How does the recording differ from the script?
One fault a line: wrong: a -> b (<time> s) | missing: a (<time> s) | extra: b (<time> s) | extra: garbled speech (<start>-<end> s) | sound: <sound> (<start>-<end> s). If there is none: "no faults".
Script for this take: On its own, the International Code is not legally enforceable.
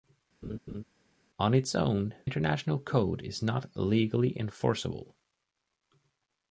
sound: laugh (0.4-0.8 s)
missing: the (2.1 s)